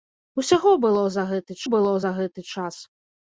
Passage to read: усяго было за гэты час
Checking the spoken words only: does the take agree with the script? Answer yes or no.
no